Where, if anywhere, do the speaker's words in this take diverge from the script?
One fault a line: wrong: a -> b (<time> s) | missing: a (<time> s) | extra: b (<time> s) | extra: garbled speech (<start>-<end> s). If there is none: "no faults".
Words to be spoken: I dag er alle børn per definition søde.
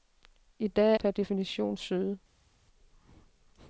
missing: alle børn (0.9 s)